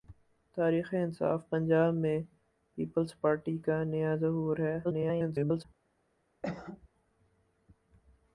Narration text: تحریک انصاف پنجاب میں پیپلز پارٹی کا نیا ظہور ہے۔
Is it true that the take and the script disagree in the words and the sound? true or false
true